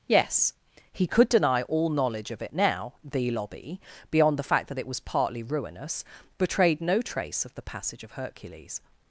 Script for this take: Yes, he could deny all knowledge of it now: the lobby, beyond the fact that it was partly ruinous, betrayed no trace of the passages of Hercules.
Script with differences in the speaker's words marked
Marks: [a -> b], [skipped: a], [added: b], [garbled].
Yes, he could deny all knowledge of it now: the lobby, beyond the fact that it was partly ruinous, betrayed no trace of the [passages -> passage] of Hercules.